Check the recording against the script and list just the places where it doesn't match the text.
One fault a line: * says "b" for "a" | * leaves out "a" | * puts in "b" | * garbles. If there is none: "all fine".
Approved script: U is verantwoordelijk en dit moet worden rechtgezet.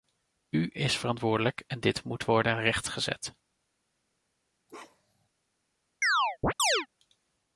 all fine